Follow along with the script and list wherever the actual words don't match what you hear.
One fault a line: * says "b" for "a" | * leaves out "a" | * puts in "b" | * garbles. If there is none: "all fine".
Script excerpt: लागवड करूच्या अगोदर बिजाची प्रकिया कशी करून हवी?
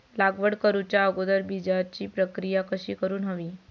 all fine